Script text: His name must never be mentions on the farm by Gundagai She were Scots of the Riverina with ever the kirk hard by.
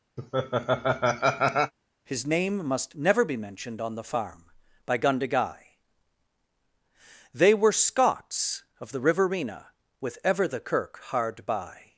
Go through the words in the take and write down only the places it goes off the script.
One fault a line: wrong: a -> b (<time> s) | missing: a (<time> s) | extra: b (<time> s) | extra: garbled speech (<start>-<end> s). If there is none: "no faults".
wrong: mentions -> mentioned (3.4 s)
wrong: She -> They (7.3 s)